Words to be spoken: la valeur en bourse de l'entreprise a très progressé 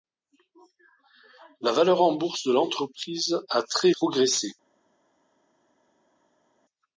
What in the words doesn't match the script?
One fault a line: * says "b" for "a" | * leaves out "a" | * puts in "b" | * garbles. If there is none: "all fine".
all fine